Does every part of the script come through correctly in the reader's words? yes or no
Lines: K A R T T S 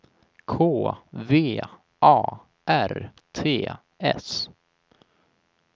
no